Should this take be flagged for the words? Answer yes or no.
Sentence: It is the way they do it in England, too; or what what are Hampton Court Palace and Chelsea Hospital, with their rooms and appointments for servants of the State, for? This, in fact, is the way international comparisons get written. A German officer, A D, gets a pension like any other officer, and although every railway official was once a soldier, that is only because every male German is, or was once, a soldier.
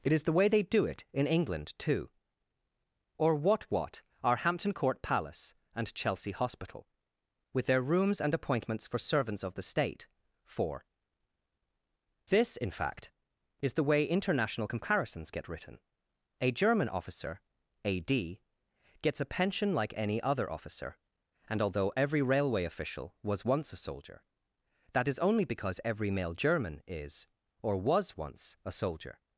no